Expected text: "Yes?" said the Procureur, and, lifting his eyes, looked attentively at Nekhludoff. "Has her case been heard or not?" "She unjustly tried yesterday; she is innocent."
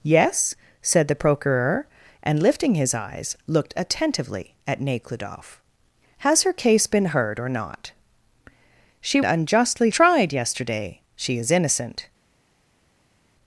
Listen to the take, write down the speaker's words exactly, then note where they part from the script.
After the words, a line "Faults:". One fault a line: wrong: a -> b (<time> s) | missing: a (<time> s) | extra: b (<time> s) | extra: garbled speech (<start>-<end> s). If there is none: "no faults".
"Yes?" said the Procureur, and, lifting his eyes, looked attentively at Nekhludoff. "Has her case been heard or not?" "She unjustly tried yesterday; she is innocent."
Faults:
no faults